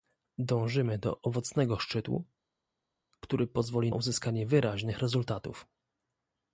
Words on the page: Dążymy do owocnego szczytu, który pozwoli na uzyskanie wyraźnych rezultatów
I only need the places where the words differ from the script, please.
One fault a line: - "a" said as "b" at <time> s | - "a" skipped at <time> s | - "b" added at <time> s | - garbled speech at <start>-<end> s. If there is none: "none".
- "na" skipped at 3.9 s